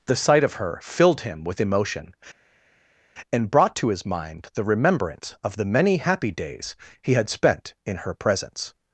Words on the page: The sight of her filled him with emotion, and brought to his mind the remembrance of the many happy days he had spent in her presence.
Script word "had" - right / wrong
right